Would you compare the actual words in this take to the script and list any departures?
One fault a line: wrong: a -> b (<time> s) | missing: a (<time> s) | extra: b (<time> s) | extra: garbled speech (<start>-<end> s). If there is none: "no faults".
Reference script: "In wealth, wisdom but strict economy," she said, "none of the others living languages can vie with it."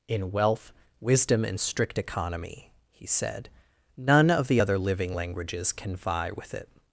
wrong: but -> and (1.4 s)
wrong: she -> he (2.9 s)
wrong: others -> other (4.6 s)